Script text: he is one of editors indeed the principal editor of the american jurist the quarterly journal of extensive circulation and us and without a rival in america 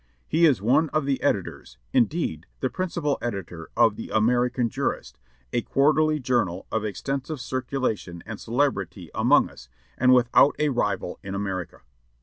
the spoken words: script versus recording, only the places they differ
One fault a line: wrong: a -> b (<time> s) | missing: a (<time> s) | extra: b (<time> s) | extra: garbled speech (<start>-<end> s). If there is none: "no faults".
extra: the (1.1 s)
wrong: the -> a (5.5 s)
extra: celebrity among (8.4 s)